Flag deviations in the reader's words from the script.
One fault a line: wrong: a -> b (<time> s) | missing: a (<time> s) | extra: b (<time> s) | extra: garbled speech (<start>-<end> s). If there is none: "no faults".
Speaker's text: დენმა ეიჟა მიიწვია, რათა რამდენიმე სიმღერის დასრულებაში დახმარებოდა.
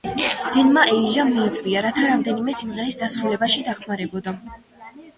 no faults